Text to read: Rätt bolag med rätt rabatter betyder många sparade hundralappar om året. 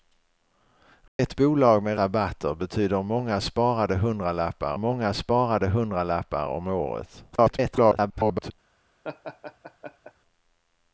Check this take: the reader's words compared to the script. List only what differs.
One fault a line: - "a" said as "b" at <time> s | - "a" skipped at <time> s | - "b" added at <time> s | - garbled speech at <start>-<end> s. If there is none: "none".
- "rätt" skipped at 2.0 s
- "många sparade hundralappar" added at 4.8 s
- garbled speech at 7.3-8.5 s